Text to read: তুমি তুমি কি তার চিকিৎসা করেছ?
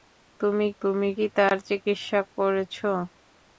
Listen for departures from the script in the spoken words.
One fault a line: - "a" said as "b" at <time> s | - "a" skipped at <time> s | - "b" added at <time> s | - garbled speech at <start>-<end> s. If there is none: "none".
none